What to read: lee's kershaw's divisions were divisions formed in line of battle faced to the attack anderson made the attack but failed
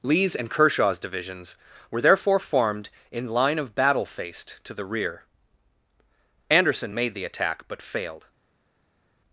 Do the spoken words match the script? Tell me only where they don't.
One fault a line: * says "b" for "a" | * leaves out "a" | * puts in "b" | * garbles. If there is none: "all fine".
* puts in "and"
* says "therefore" for "divisions"
* says "rear" for "attack"